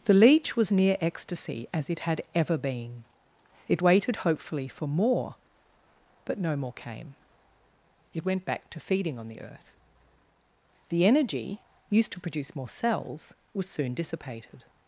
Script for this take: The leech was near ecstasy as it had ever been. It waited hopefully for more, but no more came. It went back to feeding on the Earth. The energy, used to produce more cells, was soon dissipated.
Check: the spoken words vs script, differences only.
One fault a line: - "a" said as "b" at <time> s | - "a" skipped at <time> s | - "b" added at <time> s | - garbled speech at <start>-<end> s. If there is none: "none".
none